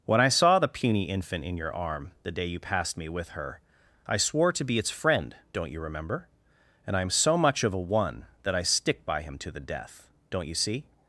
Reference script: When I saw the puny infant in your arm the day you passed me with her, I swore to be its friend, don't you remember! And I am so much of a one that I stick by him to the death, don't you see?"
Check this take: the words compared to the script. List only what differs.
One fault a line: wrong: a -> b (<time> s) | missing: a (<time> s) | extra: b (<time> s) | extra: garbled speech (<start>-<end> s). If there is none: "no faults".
no faults